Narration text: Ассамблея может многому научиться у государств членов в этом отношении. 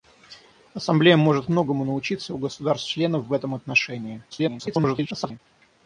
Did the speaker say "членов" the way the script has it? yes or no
yes